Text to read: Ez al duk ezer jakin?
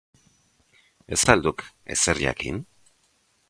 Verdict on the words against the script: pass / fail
pass